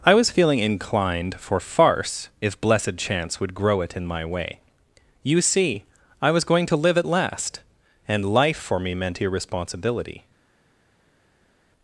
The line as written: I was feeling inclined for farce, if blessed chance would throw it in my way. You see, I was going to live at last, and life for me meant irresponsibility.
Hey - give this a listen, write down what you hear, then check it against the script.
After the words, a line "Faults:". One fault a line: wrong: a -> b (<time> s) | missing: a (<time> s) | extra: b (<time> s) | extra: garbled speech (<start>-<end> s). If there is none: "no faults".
I was feeling inclined for farce, if blessed chance would grow it in my way. You see, I was going to live at last, and life for me meant irresponsibility.
Faults:
wrong: throw -> grow (3.5 s)